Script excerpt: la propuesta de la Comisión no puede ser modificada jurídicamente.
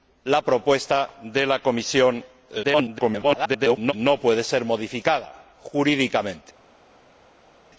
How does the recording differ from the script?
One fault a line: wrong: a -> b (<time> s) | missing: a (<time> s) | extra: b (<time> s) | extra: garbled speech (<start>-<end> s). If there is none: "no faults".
extra: garbled speech (2.6-3.9 s)